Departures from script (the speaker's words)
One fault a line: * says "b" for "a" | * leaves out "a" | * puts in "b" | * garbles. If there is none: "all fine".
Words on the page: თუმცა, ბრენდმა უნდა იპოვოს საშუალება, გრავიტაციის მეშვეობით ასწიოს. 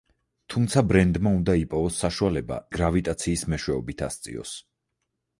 all fine